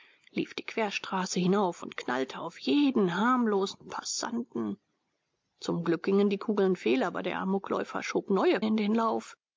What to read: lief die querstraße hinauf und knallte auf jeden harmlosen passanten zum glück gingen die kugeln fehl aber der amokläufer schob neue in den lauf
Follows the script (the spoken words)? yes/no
yes